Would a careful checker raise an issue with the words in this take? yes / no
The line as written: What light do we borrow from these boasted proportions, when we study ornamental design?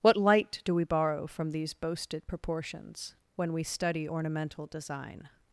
no